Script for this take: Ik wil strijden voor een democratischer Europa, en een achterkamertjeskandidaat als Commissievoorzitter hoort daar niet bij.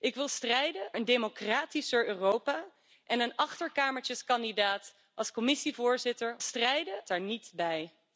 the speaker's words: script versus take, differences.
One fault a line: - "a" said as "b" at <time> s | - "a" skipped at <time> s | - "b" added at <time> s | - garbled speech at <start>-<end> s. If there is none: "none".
- "voor" skipped at 0.9 s
- "hoort" said as "strijden" at 6.4 s